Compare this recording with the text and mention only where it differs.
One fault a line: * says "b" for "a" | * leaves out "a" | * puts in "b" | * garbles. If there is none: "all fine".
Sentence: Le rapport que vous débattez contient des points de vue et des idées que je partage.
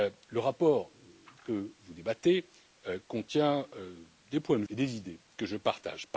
* leaves out "vue"